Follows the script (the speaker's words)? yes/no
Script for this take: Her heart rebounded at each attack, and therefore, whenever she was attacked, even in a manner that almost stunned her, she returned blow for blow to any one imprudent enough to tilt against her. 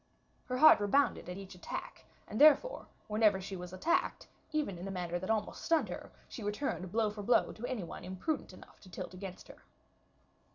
yes